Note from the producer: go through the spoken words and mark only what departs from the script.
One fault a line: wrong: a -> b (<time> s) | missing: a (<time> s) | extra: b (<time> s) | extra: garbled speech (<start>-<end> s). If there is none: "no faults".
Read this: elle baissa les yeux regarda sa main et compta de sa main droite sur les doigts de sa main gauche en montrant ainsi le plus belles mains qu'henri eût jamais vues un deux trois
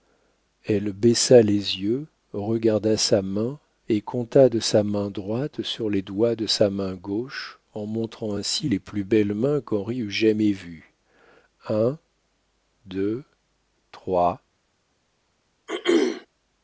wrong: le -> les (8.7 s)